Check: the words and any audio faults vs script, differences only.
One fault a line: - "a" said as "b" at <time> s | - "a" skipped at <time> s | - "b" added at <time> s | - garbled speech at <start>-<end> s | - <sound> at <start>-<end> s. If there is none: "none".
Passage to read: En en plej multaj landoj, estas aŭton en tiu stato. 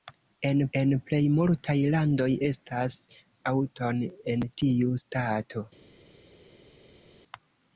none